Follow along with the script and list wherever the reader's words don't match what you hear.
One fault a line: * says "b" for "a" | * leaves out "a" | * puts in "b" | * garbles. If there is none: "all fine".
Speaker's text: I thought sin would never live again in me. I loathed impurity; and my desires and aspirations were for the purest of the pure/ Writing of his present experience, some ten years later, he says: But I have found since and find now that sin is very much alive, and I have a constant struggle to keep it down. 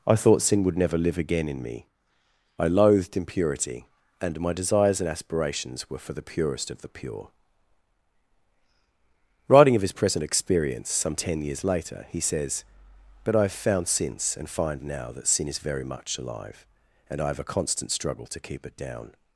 all fine